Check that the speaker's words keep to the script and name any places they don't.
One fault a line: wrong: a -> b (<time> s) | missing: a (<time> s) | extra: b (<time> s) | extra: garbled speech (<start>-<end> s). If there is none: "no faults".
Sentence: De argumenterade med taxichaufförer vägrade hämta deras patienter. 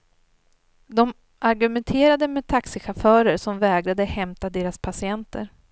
extra: som (3.4 s)